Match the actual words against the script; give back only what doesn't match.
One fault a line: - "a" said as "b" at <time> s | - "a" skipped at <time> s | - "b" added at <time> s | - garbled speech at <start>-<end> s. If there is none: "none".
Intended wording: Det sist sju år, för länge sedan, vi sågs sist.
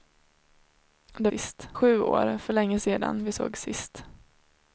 none